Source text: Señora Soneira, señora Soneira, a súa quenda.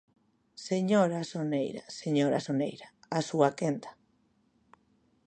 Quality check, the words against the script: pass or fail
pass